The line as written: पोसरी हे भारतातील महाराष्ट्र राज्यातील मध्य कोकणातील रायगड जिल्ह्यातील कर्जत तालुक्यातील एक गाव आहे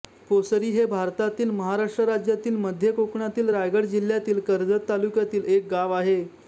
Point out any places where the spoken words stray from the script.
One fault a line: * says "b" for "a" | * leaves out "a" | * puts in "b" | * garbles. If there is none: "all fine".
all fine